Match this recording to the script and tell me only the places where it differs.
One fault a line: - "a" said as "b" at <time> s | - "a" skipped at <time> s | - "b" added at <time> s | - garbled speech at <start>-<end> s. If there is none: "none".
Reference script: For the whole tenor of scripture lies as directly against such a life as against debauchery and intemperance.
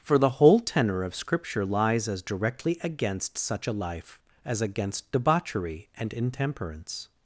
none